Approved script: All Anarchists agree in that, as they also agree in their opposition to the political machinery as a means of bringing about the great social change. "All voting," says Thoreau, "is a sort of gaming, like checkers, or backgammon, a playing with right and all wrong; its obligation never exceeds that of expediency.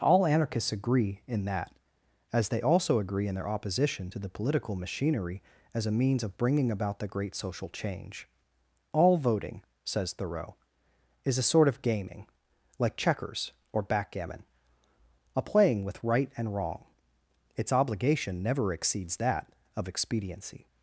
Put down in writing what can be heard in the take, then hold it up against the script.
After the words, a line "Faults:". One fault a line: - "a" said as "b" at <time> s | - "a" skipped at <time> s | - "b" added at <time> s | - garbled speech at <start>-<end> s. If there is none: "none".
All Anarchists agree in that, as they also agree in their opposition to the political machinery as a means of bringing about the great social change. "All voting," says Thoreau, "is a sort of gaming, like checkers, or backgammon, a playing with right and wrong; its obligation never exceeds that of expediency.
Faults:
- "all" skipped at 16.5 s